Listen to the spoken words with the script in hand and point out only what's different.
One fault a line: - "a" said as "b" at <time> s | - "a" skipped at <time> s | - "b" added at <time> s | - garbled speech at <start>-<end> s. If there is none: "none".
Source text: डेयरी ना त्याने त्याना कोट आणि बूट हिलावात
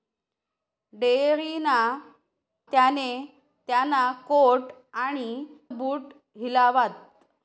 none